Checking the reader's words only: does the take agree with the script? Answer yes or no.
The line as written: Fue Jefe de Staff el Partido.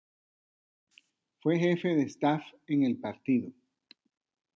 no